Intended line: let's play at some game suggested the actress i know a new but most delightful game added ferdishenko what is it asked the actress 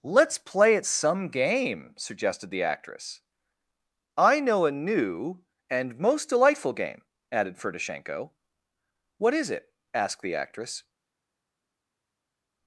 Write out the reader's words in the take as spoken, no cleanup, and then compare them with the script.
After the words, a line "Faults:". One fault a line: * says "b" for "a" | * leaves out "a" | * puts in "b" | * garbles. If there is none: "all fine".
let's play at some game suggested the actress i know a new and most delightful game added ferdishenko what is it asked the actress
Faults:
* says "and" for "but"